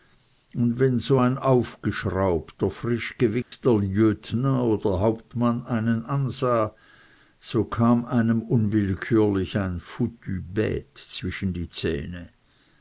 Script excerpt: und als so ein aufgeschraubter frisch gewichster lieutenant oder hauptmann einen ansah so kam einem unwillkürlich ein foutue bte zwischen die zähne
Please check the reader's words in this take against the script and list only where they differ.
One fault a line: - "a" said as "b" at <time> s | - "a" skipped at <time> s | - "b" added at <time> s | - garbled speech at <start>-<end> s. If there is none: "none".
- "als" said as "wenn" at 0.8 s